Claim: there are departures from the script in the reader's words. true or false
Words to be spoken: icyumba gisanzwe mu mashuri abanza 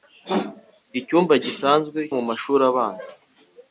false